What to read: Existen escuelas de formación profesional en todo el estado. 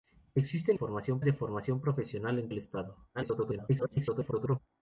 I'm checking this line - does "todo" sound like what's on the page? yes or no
no